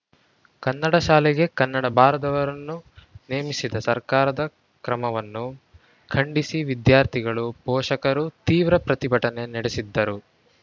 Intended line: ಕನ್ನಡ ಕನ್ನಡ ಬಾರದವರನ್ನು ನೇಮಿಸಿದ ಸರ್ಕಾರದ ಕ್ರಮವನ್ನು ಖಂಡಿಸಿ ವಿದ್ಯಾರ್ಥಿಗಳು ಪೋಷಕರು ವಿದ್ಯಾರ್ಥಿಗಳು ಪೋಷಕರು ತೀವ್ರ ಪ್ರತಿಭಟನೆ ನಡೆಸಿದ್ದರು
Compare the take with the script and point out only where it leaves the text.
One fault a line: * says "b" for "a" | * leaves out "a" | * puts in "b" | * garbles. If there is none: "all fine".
* puts in "ಶಾಲೆಗೆ"
* leaves out "ವಿದ್ಯಾರ್ಥಿಗಳು ಪೋಷಕರು"